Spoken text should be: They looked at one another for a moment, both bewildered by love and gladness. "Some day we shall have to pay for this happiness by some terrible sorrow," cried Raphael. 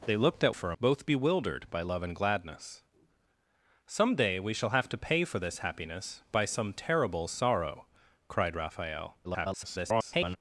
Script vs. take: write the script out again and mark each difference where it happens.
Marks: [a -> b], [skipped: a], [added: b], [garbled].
They looked at [skipped: one another] for a [skipped: moment,] both bewildered by love and gladness. "Some day we shall have to pay for this happiness by some terrible sorrow," cried Raphael. [garbled]